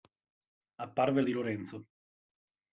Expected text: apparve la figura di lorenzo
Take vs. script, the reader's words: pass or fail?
fail